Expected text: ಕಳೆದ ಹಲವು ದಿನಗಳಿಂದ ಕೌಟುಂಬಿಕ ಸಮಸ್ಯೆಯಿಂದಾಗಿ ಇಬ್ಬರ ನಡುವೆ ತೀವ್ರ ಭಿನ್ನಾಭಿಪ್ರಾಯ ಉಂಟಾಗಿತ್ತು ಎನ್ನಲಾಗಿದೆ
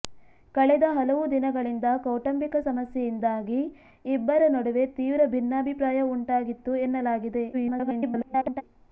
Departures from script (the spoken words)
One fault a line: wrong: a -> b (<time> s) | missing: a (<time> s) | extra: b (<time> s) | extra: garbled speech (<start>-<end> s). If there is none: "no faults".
extra: garbled speech (7.5-8.6 s)